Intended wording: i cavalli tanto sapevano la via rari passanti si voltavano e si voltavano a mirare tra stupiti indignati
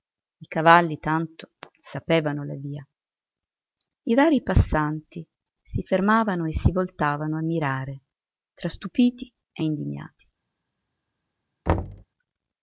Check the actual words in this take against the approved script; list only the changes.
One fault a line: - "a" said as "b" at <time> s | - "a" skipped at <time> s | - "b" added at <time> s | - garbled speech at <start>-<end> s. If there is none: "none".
- "i" added at 4.0 s
- "voltavano" said as "fermavano" at 5.8 s
- "e" added at 9.5 s